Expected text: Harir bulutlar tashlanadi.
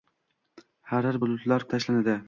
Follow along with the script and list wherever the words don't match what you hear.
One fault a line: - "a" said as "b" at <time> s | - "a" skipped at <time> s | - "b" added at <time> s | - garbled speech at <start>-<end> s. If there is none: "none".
none